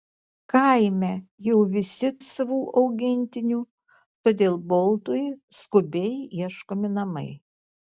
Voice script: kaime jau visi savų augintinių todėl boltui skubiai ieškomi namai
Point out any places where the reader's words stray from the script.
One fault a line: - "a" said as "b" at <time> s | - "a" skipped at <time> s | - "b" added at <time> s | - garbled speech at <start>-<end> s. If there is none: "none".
none